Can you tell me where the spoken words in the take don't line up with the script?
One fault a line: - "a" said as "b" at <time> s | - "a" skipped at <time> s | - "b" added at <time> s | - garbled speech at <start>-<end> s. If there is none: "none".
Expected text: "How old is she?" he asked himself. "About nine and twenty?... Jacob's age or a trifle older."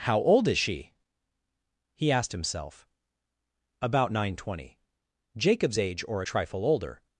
- "and" skipped at 4.4 s